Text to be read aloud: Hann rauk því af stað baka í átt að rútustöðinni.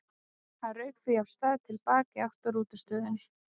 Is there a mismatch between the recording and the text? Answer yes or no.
yes